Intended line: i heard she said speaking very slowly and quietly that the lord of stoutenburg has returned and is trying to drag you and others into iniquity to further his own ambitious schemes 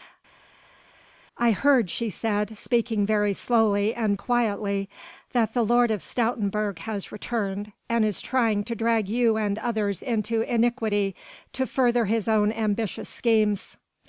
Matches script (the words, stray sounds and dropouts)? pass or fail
pass